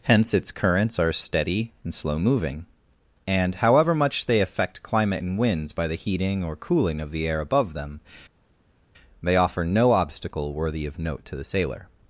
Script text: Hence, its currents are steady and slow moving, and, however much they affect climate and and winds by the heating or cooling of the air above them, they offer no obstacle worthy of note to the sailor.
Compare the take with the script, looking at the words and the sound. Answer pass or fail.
fail